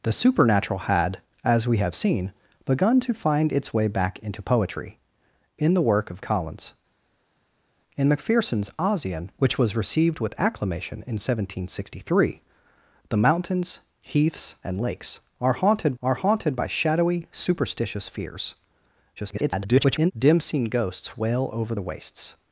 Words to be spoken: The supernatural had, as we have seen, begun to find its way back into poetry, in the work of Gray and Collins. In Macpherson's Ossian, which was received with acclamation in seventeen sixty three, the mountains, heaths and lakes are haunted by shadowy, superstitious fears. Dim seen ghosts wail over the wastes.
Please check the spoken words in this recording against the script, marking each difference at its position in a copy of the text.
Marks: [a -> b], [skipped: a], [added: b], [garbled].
The supernatural had, as we have seen, begun to find its way back into poetry, in the work of [skipped: Gray and] Collins. In Macpherson's Ossian, which was received with acclamation in seventeen sixty three, the mountains, heaths and lakes are haunted [added: are haunted] by shadowy, superstitious fears. [garbled] Dim seen ghosts wail over the wastes.